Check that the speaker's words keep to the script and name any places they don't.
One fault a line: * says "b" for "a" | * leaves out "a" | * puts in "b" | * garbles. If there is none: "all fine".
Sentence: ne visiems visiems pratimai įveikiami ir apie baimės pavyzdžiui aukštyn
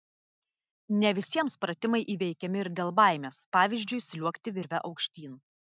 * leaves out "visiems"
* says "dėl" for "apie"
* puts in "sliuogti virve"